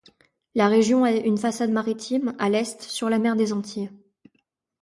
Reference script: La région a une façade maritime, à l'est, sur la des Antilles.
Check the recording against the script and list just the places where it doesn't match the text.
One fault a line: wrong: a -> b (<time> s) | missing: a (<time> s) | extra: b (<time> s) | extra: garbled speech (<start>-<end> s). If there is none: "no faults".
extra: mer (3.2 s)